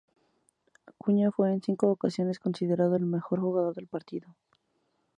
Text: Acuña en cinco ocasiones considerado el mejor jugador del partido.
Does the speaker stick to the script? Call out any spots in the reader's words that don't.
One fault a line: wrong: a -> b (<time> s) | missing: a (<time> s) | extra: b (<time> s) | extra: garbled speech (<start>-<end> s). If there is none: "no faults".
extra: fue (1.3 s)